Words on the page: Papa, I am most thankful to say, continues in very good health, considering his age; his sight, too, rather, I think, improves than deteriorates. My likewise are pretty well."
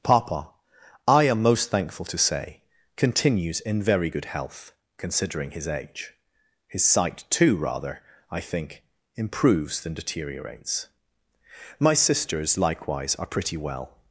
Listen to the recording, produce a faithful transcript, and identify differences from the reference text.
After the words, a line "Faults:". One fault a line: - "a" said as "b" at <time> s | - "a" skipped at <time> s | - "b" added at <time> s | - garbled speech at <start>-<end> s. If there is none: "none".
Papa, I am most thankful to say, continues in very good health, considering his age; his sight, too, rather, I think, improves than deteriorates. My sisters likewise are pretty well."
Faults:
- "sisters" added at 11.9 s